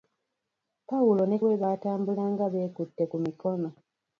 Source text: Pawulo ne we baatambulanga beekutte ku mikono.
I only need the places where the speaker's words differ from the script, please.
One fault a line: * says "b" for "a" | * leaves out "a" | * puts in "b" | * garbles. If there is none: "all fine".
all fine